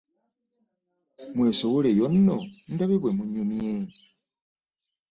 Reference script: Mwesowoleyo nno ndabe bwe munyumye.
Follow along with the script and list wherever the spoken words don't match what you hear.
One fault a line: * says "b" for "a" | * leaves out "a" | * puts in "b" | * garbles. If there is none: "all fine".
all fine